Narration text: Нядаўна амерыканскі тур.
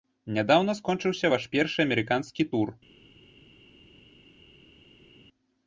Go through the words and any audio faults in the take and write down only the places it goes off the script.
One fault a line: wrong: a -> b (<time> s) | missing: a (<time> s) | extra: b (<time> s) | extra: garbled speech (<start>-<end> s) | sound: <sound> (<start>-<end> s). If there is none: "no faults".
extra: скончыўся ваш першы (0.8 s)